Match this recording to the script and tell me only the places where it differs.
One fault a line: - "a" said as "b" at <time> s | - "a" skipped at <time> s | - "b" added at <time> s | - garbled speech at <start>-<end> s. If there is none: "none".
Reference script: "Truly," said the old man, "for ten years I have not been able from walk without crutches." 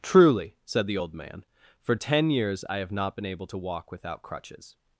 - "from" said as "to" at 3.5 s